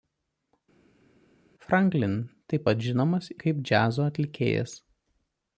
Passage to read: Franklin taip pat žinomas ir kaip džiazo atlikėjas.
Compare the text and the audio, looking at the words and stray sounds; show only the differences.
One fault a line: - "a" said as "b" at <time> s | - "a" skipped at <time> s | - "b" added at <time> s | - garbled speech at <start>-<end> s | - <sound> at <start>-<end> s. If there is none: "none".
- "ir" skipped at 3.3 s